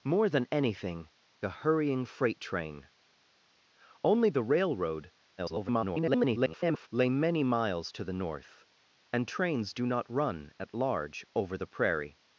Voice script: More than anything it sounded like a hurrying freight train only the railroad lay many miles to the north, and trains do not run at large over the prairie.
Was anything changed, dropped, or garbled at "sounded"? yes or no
yes